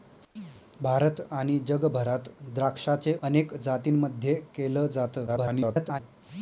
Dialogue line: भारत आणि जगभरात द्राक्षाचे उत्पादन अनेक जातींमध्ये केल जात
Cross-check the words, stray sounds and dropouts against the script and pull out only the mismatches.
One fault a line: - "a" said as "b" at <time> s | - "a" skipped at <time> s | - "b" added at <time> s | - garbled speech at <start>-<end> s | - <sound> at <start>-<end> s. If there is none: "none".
- "उत्पादन" skipped at 3.1 s
- garbled speech at 5.3-6.0 s